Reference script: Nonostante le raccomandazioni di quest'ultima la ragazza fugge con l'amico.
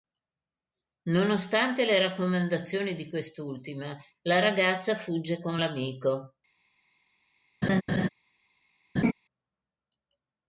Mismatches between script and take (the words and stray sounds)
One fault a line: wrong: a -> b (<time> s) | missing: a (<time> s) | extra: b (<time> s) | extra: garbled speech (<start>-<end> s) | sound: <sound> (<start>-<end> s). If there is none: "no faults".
sound: laugh (7.6-8.1 s)
sound: laugh (9.0-9.1 s)